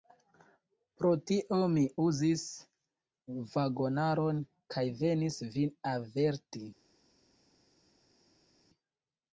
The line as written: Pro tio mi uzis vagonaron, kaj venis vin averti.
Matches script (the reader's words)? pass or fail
pass